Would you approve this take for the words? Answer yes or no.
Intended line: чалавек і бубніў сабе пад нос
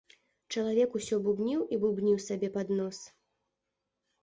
no